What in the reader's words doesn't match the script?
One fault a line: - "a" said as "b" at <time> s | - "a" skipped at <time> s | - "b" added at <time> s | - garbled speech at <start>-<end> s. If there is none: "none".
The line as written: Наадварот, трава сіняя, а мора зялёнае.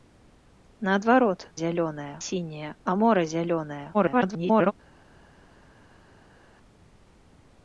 - "трава" said as "зялёнае" at 1.6 s
- garbled speech at 3.9-4.7 s